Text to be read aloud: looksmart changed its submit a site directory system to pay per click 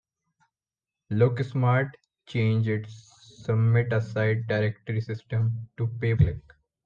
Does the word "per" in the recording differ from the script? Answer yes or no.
yes